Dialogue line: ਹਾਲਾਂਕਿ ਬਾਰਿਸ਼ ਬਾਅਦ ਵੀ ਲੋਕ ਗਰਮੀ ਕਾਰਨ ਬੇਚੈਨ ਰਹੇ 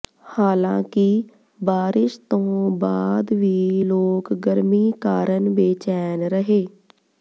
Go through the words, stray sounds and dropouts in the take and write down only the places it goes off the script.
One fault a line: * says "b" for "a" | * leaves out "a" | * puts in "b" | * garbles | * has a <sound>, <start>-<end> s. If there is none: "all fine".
* puts in "ਤੋਂ"